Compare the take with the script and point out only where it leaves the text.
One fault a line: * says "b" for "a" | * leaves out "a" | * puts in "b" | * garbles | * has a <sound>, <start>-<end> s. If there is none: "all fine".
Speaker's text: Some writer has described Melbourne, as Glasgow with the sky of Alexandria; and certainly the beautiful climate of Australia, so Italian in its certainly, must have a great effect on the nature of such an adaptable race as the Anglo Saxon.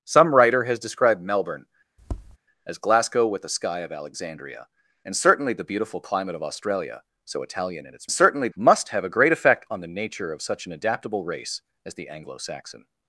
* has a tap, 2.0-2.4 s